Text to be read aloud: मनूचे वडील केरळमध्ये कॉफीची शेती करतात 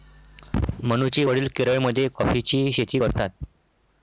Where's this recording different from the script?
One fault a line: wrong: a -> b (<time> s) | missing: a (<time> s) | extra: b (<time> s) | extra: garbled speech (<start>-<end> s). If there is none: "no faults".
no faults